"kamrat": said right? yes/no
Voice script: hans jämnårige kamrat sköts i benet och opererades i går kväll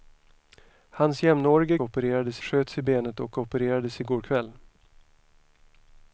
no